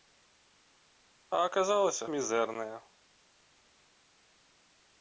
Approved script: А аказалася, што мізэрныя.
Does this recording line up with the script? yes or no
no